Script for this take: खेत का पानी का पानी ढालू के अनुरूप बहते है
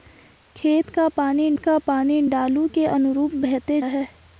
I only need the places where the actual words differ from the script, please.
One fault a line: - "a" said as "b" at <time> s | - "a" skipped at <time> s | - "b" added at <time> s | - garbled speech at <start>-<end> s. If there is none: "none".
none